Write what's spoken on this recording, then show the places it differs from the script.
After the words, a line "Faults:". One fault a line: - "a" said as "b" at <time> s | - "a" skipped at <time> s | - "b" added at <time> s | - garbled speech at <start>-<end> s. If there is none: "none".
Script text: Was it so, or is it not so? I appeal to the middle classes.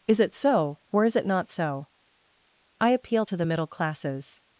Is it so, or is it not so? I appeal to the middle classes.
Faults:
- "Was" said as "Is" at 0.1 s